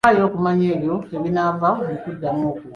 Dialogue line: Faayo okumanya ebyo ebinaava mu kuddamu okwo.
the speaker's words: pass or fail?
pass